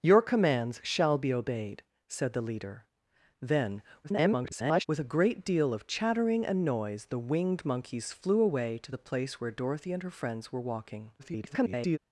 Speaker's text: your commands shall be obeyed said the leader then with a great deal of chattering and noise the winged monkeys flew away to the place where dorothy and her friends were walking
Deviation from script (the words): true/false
true